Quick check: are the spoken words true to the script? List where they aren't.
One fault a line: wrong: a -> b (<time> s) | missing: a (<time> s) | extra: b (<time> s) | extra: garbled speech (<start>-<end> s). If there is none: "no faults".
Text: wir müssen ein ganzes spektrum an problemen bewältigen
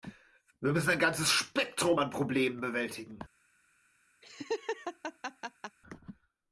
no faults